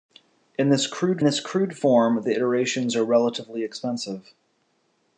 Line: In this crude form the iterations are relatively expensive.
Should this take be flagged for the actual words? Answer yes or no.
yes